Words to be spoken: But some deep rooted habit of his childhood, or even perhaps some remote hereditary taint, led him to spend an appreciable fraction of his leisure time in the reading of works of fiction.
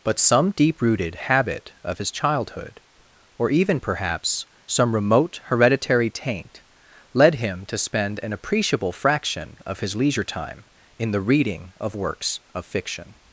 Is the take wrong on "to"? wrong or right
right